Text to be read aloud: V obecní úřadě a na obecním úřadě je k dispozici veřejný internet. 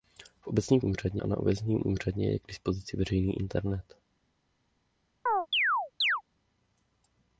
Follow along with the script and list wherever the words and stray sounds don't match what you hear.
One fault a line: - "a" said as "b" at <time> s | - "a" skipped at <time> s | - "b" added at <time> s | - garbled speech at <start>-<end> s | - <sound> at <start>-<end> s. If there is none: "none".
- chirp at 5.3-6.2 s